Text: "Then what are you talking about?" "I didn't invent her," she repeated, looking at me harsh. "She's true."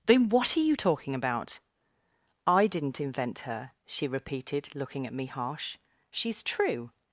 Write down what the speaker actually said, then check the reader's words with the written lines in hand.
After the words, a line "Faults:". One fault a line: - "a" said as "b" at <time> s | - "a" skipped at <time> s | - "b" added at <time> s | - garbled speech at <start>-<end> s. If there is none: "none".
"Then what are you talking about?" "I didn't invent her," she repeated, looking at me harsh. "She's true."
Faults:
none